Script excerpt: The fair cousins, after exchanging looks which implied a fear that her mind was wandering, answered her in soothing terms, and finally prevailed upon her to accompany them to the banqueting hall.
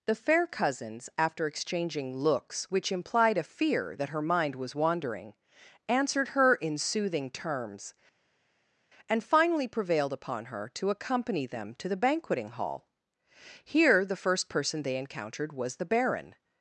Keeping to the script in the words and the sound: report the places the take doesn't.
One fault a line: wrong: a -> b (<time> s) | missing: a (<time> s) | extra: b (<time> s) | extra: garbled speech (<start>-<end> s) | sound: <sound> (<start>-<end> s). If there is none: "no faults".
extra: Here the first person they encountered was the Baron (13.6 s)